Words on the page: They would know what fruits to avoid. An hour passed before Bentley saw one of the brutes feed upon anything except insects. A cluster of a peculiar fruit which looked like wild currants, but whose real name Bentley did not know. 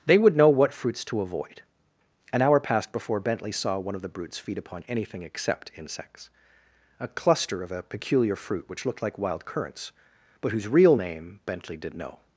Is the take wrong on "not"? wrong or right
wrong